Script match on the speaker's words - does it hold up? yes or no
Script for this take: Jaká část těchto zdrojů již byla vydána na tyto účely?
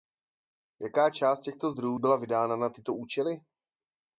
no